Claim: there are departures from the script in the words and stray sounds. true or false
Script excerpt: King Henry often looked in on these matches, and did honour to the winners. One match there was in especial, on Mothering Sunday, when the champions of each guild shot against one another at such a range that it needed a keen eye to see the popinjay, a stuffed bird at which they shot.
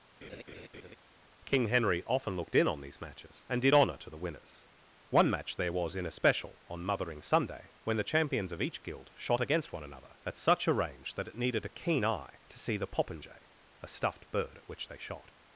true